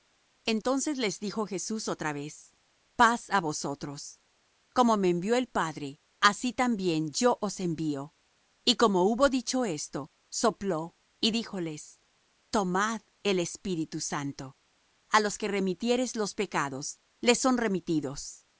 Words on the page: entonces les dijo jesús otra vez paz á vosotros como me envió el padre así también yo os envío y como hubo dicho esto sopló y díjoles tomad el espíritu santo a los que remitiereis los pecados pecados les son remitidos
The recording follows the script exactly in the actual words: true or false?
false